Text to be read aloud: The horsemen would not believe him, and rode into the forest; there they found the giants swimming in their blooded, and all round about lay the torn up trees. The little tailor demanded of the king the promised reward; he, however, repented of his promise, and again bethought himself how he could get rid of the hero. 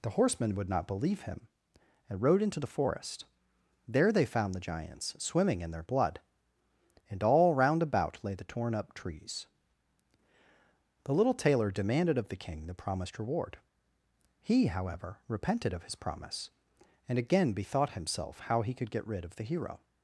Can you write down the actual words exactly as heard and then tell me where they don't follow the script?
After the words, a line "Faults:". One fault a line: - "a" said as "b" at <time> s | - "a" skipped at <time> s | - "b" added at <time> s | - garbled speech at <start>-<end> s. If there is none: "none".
The horsemen would not believe him, and rode into the forest; there they found the giants swimming in their blood, and all round about lay the torn up trees. The little tailor demanded of the king the promised reward; he, however, repented of his promise, and again bethought himself how he could get rid of the hero.
Faults:
- "blooded" said as "blood" at 5.8 s